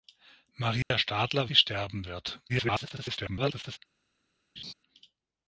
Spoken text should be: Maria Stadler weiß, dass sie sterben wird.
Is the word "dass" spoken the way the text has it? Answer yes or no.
no